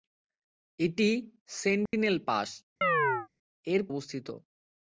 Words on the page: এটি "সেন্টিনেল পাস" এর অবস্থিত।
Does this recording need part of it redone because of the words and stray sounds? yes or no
yes